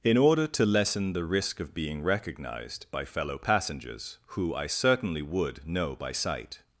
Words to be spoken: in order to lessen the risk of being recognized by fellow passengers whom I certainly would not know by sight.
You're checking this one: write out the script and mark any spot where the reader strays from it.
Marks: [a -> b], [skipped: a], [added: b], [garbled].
in order to lessen the risk of being recognized by fellow passengers [whom -> who] I certainly would [skipped: not] know by sight.